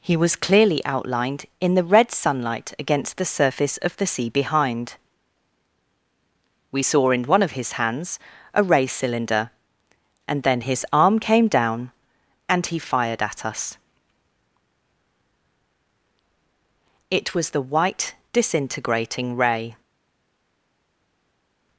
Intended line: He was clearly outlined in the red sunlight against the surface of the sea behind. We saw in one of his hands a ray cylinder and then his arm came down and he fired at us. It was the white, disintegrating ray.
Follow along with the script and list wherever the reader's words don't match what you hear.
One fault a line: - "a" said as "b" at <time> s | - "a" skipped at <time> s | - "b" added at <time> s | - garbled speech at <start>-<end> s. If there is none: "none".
none